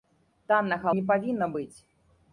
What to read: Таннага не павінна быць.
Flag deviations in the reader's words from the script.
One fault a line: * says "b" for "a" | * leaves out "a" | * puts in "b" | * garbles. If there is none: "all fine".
all fine